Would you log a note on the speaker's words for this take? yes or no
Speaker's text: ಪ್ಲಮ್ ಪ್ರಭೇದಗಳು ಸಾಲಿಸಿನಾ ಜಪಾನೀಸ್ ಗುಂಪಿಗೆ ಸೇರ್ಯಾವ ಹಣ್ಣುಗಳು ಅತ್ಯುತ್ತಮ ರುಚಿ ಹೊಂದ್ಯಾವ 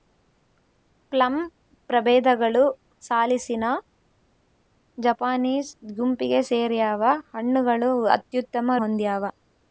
yes